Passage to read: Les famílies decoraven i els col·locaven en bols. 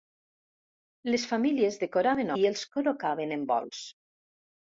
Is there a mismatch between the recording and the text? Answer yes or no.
no